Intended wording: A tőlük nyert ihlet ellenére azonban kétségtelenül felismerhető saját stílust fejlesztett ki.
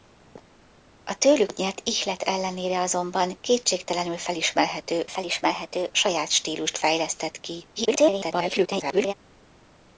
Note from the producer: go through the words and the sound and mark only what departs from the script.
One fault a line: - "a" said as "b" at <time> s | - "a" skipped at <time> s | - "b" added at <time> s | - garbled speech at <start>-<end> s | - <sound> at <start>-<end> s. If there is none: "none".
- "felismerhető" added at 5.1 s
- garbled speech at 7.8-9.1 s